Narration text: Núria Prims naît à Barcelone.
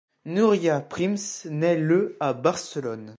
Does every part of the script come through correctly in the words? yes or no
no